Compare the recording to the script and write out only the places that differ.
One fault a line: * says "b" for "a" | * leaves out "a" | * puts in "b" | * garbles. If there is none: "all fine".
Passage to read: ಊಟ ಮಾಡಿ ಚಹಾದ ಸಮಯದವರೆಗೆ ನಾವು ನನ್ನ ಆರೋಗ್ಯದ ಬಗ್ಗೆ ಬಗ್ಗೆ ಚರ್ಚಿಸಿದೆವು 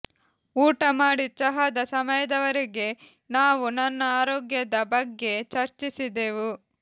* leaves out "ಬಗ್ಗೆ"